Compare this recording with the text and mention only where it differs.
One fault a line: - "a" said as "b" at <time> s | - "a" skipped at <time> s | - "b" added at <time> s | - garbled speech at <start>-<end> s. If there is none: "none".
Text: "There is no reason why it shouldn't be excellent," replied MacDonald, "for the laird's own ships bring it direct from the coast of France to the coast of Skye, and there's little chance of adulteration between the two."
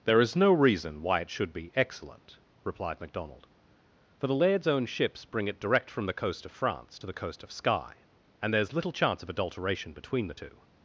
- "shouldn't" said as "should" at 1.3 s